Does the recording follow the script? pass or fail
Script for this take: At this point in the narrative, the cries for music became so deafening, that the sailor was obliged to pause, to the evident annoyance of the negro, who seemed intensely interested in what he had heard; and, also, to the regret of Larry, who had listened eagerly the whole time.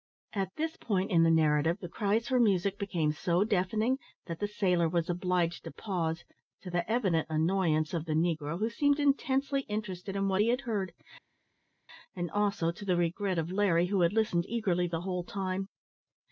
pass